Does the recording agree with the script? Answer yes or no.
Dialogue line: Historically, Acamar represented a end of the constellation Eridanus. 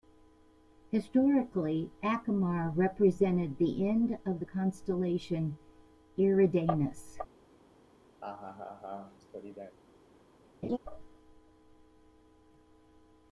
no